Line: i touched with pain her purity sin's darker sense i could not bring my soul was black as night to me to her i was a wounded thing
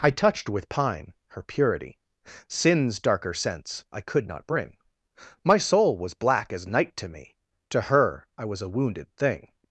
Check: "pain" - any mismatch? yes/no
yes